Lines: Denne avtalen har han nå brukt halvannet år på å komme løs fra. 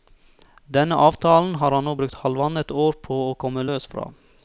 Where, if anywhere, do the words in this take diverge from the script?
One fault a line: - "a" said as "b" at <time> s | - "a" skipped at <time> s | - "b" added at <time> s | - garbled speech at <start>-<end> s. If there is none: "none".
none